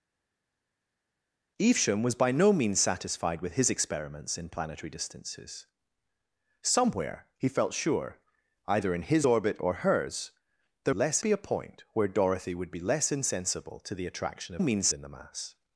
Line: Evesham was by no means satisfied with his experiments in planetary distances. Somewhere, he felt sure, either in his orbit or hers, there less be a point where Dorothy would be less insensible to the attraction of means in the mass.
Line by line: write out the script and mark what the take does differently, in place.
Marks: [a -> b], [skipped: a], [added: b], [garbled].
Evesham was by no means satisfied with his experiments in planetary distances. Somewhere, he felt sure, either in his orbit or hers, there less be a point where Dorothy would be less insensible to the attraction of means in the mass.